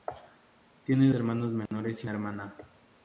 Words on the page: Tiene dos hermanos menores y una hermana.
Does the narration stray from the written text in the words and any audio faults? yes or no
yes